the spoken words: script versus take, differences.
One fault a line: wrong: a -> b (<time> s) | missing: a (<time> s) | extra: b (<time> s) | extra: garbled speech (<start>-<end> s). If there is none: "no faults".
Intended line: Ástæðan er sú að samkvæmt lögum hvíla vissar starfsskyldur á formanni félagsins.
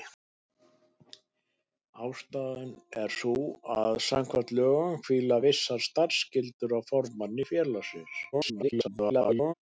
extra: garbled speech (8.3-9.5 s)